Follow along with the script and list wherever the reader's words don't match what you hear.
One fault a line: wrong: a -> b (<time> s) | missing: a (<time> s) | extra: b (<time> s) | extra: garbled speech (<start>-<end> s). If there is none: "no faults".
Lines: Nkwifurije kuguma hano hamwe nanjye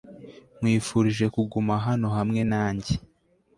no faults